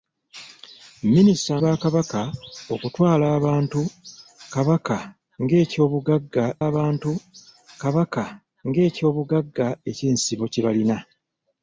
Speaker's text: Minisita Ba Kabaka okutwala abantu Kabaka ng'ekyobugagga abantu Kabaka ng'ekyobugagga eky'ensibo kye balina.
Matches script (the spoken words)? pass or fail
pass